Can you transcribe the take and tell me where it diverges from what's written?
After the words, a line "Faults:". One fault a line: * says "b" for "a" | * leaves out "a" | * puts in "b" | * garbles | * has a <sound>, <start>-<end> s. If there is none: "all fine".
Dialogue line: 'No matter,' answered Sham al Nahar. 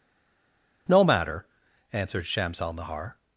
'No matter,' answered Shams al Nahar.
Faults:
* says "Shams" for "Sham"